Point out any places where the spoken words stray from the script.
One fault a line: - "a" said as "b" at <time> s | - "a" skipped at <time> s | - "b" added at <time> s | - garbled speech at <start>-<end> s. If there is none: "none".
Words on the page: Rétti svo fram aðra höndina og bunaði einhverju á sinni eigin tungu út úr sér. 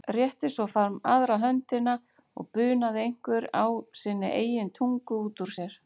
none